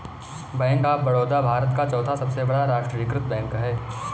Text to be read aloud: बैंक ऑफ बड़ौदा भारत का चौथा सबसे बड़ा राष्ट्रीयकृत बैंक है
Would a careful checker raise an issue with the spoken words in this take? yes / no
no